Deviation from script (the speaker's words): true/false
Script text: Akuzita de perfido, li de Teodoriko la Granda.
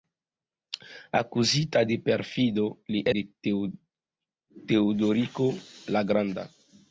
false